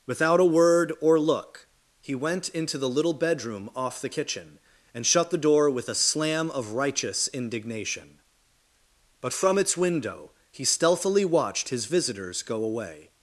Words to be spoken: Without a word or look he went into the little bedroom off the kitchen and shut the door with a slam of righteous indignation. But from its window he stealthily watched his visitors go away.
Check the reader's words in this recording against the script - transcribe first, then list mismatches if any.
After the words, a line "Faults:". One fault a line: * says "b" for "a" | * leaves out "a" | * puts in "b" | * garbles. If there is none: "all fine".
Without a word or look he went into the little bedroom off the kitchen and shut the door with a slam of righteous indignation. But from its window he stealthily watched his visitors go away.
Faults:
all fine